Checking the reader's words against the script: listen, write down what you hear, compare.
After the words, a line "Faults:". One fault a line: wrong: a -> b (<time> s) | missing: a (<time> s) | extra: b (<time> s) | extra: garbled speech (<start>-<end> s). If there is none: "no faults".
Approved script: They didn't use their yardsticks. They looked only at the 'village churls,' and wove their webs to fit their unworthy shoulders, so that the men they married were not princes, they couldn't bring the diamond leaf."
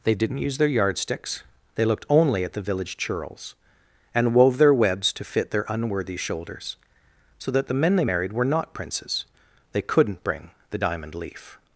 They didn't use their yardsticks. They looked only at the 'village churls,' and wove their webs to fit their unworthy shoulders, so that the men they married were not princes, they couldn't bring the diamond leaf."
Faults:
no faults